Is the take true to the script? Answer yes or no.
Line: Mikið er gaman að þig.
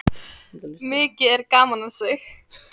yes